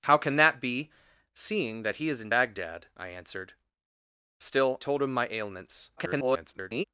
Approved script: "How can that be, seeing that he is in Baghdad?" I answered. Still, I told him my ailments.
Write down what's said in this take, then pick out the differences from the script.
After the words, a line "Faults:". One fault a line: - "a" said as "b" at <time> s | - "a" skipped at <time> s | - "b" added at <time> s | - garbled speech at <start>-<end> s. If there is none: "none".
"How can that be, seeing that he is in Baghdad?" I answered. Still, told him my ailments. [garbled]
Faults:
- "I" skipped at 4.8 s
- garbled speech at 6.0-6.8 s